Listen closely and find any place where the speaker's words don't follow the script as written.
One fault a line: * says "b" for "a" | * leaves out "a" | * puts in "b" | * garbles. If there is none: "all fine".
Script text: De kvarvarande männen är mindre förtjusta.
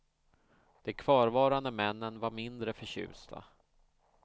* says "var" for "är"